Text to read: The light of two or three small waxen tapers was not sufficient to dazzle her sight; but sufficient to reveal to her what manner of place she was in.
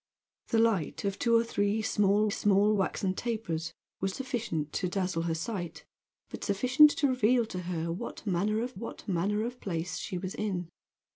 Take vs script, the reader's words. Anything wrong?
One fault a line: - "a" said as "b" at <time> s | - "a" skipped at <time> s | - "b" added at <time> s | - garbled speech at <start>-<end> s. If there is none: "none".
- "small" added at 2.3 s
- "not" skipped at 4.1 s
- "what manner of" added at 8.7 s